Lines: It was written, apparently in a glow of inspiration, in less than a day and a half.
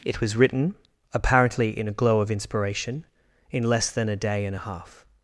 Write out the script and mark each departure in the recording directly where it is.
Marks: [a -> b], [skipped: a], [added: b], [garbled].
It was written, apparently in a glow of inspiration, in less than a day and a half.